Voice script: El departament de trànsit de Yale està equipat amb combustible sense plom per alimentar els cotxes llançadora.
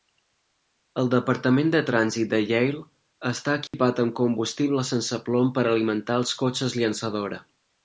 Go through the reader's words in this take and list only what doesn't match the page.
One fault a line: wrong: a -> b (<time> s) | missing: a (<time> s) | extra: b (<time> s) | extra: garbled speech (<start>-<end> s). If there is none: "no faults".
no faults